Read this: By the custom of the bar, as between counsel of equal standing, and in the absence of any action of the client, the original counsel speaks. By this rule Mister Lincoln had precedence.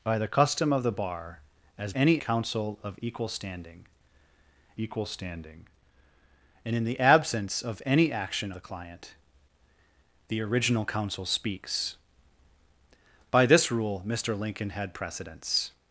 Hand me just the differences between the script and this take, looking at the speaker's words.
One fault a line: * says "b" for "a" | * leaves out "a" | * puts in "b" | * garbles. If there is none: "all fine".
* says "any" for "between"
* puts in "equal standing"
* leaves out "of"